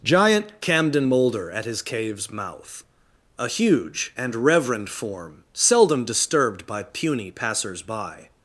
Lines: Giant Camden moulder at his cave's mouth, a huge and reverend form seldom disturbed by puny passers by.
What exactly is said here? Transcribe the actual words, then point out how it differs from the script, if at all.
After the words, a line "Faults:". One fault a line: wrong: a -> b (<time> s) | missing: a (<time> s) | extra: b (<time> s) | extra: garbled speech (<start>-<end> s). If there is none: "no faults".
Giant Camden moulder at his cave's mouth, a huge and reverend form seldom disturbed by puny passers by.
Faults:
no faults